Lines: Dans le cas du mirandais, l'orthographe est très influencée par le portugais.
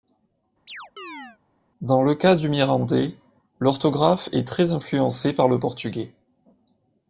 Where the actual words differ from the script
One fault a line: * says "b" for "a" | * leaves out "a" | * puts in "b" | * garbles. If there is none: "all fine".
all fine